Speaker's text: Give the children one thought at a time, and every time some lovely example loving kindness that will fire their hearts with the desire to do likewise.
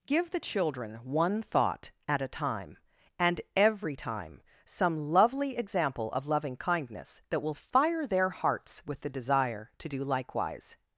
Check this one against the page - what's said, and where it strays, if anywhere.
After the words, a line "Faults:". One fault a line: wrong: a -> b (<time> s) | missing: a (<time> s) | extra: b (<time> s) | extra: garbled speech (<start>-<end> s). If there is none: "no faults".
Give the children one thought at a time, and every time some lovely example of loving kindness that will fire their hearts with the desire to do likewise.
Faults:
extra: of (6.1 s)